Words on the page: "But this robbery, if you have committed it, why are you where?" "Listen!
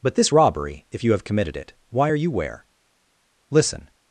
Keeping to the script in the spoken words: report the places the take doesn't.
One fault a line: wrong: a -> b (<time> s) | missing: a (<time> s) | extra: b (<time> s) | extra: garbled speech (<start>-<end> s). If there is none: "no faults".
no faults